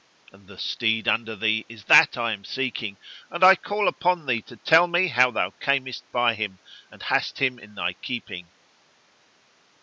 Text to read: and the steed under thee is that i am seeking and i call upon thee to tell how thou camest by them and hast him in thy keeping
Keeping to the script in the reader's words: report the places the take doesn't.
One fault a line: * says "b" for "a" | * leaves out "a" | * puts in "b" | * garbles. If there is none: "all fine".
* puts in "me"
* says "him" for "them"